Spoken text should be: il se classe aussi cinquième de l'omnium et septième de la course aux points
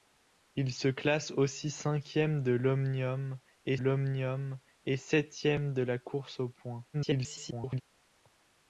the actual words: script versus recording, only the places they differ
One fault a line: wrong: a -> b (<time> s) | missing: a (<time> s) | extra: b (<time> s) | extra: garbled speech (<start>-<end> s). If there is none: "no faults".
extra: l'omnium et (3.7 s)
extra: garbled speech (6.9-7.8 s)